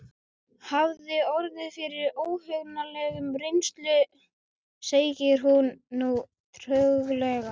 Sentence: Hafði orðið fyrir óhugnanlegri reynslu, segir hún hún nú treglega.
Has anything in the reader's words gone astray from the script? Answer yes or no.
yes